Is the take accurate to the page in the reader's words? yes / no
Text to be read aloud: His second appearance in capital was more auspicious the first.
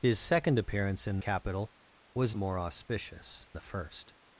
yes